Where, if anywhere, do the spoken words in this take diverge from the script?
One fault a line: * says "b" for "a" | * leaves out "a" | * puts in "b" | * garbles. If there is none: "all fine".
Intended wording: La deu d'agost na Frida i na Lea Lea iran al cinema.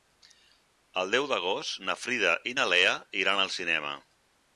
* says "El" for "La"
* leaves out "Lea"